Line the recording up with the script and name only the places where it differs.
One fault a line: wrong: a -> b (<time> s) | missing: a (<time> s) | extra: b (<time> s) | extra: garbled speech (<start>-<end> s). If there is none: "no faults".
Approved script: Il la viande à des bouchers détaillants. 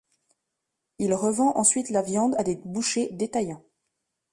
extra: revend ensuite (1.1 s)